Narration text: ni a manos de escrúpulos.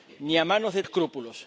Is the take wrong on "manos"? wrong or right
right